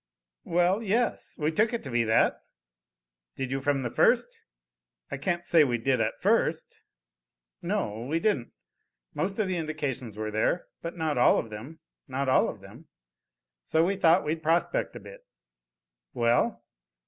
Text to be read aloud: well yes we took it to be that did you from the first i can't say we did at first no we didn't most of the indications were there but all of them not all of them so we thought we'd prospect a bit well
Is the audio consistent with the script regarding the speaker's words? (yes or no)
no